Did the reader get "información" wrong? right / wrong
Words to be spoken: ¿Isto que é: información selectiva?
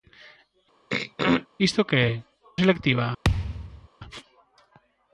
wrong